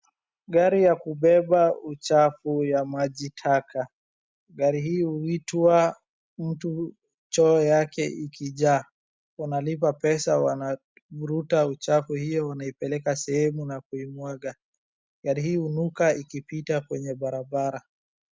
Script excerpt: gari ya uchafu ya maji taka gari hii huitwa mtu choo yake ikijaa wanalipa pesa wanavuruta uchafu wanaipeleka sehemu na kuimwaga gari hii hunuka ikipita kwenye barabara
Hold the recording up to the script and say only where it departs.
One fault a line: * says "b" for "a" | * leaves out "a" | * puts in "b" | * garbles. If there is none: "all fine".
* puts in "kubeba"
* puts in "hiyo"